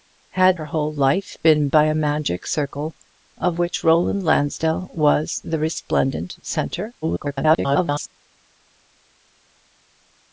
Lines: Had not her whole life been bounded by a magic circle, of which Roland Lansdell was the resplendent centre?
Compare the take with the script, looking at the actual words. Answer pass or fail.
fail